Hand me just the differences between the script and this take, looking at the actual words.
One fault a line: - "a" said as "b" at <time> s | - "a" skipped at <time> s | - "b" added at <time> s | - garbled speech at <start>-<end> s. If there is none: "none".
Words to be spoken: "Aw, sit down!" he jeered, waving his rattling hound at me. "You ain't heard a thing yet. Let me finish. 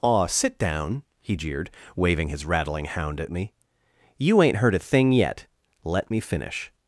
none